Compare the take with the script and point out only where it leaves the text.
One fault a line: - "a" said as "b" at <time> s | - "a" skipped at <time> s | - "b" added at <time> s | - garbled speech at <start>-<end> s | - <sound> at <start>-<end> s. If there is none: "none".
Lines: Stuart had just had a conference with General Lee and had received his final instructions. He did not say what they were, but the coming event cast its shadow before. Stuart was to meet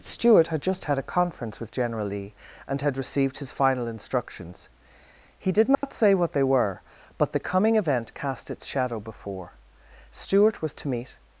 - dropout at 5.7-5.8 s